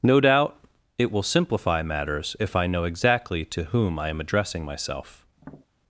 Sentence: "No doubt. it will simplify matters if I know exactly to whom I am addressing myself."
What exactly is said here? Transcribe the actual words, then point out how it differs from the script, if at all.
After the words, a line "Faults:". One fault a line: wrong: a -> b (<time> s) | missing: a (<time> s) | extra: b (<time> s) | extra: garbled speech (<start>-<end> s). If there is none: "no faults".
"No doubt. it will simplify matters if I know exactly to whom I am addressing myself."
Faults:
no faults